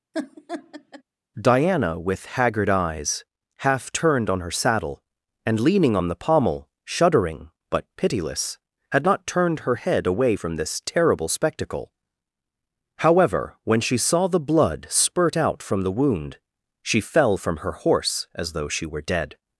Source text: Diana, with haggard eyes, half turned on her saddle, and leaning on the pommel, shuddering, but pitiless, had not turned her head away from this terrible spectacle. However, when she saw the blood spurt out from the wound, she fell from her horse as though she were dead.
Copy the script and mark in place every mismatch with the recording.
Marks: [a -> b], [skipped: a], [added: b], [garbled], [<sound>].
[laugh] Diana, with haggard eyes, half turned on her saddle, and leaning on the pommel, shuddering, but pitiless, had not turned her head away from this terrible spectacle. However, when she saw the blood spurt out from the wound, she fell from her horse as though she were dead.